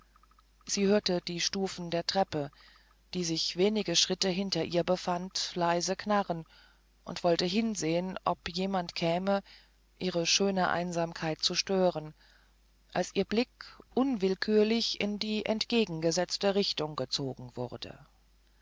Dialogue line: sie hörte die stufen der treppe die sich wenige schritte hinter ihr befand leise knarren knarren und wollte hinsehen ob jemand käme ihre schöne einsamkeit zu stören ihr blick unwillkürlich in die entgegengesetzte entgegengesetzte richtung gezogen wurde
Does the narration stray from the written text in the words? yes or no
yes